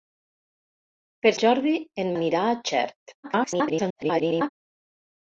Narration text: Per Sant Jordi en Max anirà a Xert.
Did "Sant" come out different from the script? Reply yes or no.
yes